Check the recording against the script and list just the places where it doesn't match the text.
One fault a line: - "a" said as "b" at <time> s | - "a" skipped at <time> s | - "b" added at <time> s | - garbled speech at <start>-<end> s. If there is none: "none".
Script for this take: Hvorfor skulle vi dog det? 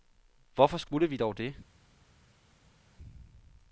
none